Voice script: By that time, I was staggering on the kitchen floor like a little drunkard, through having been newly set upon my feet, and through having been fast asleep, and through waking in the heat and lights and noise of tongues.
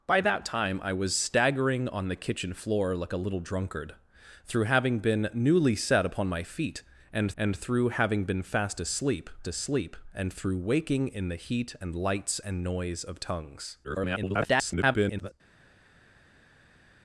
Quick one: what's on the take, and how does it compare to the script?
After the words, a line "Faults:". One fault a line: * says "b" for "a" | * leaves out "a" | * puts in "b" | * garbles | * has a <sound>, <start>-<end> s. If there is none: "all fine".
By that time, I was staggering on the kitchen floor like a little drunkard, through having been newly set upon my feet, and and through having been fast asleep asleep, and through waking in the heat and lights and noise of tongues. [garbled]
Faults:
* puts in "and"
* puts in "asleep"
* garbles